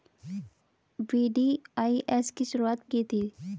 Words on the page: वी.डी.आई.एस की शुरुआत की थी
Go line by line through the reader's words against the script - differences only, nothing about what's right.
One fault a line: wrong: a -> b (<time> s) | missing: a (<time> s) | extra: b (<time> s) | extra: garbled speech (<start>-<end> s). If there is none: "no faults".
no faults